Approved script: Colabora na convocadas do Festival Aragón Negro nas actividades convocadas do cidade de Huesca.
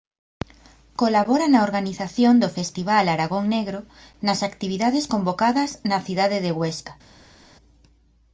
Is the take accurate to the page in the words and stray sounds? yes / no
no